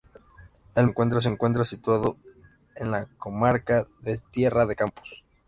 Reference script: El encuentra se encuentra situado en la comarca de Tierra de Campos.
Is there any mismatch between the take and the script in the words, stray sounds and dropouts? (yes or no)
no